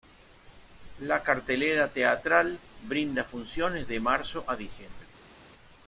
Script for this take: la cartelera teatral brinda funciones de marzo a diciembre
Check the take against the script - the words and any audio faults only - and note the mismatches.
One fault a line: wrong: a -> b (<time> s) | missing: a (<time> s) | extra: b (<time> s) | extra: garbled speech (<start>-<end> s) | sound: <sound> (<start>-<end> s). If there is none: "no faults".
no faults